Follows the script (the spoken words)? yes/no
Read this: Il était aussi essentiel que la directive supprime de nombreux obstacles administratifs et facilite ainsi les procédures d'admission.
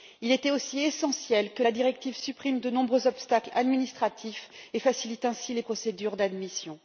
yes